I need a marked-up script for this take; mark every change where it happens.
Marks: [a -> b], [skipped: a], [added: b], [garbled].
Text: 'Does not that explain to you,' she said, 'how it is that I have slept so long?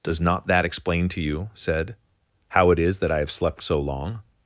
'Does not that explain to you,' [skipped: she] said, 'how it is that I have slept so long?